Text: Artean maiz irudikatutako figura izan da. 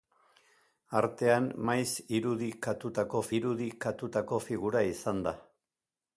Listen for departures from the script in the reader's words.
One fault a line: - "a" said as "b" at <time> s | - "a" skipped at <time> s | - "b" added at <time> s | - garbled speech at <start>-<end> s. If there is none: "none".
- "irudikatutako" added at 3.4 s